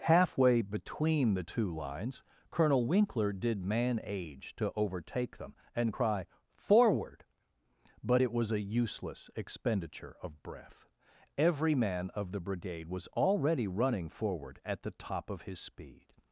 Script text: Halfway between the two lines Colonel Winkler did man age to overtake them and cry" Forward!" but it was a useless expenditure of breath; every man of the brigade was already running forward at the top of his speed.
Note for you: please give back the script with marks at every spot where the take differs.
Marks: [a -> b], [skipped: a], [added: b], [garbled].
Halfway between the two lines Colonel Winkler did man age to overtake them and cry" Forward!" but it was a useless expenditure of breath; every man of the brigade was already running forward at the top of his speed.